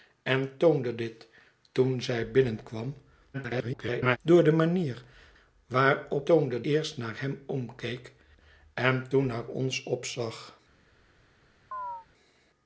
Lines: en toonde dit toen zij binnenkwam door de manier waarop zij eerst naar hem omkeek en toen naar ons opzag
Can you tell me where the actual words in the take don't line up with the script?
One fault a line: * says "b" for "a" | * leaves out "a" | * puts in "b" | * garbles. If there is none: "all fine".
* garbles
* says "toonde" for "zij"